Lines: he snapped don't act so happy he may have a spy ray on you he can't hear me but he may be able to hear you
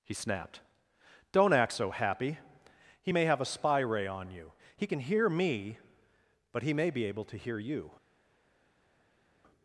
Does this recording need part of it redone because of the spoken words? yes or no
yes